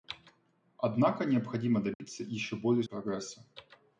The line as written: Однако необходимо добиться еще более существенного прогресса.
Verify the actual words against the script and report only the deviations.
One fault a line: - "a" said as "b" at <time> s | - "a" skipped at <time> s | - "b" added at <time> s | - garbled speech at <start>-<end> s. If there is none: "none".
- "существенного" skipped at 2.8 s